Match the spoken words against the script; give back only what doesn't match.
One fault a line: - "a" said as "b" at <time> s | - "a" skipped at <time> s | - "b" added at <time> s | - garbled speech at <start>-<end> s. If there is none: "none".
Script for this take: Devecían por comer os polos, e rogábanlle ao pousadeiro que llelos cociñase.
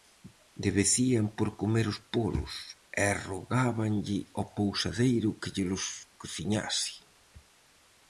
none